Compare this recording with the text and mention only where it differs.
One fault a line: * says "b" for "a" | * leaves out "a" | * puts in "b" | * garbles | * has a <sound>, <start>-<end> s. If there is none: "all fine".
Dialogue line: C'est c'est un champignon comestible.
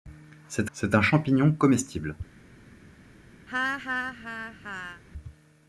* has a laugh, 3.5-5.0 s